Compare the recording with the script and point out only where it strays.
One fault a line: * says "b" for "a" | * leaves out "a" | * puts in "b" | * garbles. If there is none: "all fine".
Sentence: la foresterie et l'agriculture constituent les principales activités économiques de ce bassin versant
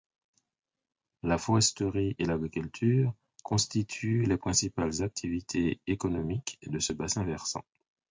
all fine